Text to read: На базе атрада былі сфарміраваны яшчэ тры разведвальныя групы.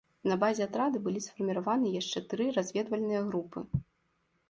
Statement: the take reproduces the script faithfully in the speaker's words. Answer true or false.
true